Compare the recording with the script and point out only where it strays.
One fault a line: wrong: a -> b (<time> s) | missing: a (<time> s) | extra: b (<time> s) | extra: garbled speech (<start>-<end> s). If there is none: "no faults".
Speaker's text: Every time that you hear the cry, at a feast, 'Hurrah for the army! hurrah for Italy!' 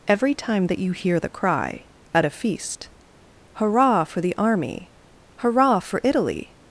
no faults